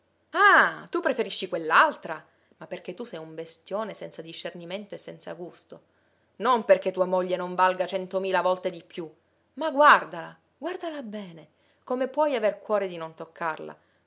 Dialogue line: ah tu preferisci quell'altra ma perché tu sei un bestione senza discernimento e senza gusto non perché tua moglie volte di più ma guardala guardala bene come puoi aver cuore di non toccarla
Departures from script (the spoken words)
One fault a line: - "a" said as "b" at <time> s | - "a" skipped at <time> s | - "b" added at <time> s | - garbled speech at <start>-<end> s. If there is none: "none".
- "non valga centomila" added at 7.4 s